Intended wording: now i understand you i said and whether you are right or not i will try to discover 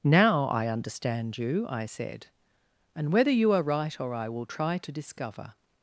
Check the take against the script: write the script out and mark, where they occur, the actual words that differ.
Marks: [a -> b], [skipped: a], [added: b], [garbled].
now i understand you i said and whether you are right or [skipped: not] i will try to discover